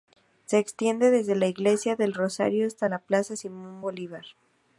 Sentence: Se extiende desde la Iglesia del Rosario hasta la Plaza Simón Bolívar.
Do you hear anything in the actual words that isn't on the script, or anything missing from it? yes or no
no